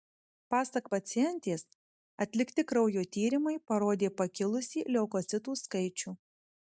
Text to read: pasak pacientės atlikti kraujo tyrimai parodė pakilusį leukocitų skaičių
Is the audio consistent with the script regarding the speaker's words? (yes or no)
yes